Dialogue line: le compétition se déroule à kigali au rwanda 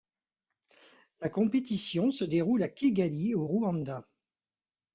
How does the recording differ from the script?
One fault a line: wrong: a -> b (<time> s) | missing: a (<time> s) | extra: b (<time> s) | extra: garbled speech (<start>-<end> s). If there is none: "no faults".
wrong: le -> la (1.2 s)